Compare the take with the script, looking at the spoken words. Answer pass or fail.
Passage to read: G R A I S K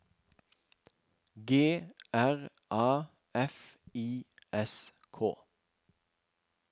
fail